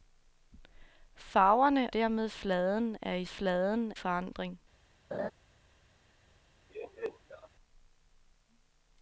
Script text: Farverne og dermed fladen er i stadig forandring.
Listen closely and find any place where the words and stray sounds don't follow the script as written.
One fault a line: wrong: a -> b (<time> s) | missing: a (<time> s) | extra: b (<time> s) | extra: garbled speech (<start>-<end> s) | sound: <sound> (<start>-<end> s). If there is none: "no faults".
missing: og (1.9 s)
wrong: stadig -> fladen (3.2 s)
sound: laugh (5.1-5.3 s)
sound: laugh (6.7-7.5 s)